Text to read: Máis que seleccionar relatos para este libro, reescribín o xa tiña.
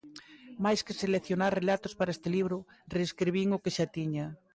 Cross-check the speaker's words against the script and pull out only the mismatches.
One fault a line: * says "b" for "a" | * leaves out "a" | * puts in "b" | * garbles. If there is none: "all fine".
* puts in "que"